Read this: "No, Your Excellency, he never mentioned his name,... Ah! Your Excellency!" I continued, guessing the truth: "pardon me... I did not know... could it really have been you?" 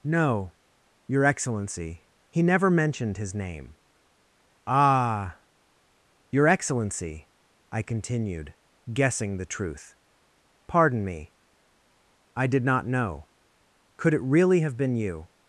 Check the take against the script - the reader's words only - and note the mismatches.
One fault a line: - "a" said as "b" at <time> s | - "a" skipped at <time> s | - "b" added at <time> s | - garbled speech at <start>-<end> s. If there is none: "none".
none